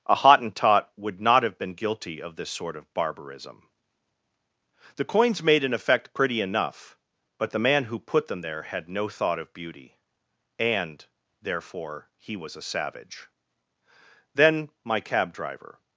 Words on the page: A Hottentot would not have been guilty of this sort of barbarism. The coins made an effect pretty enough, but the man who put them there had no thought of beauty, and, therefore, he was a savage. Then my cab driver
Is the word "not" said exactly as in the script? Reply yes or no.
yes